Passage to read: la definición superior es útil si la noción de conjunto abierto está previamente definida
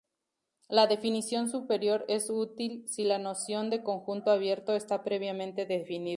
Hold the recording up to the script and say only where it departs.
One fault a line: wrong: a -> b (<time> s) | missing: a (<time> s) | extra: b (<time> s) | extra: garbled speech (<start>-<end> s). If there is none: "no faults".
no faults